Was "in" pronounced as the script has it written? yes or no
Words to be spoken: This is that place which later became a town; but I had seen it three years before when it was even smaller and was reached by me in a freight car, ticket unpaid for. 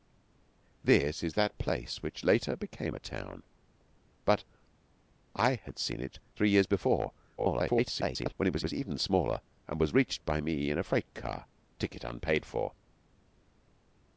yes